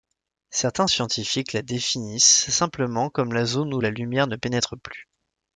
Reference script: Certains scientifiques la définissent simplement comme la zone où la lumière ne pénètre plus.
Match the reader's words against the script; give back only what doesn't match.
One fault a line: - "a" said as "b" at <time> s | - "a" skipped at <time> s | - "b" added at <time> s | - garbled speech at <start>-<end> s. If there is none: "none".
none